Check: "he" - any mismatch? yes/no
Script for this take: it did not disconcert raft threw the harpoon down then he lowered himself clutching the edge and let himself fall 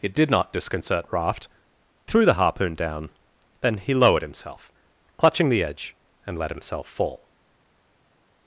no